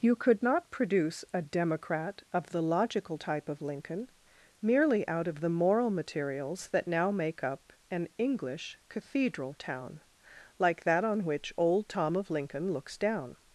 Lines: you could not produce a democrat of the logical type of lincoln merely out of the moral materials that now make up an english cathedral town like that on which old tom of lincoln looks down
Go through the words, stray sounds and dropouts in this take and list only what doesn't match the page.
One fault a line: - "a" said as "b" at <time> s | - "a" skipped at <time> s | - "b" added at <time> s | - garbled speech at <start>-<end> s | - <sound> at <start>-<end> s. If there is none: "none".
none